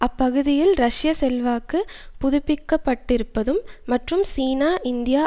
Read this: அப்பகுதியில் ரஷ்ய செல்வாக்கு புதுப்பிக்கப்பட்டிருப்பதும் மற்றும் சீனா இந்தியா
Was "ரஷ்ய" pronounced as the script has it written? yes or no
yes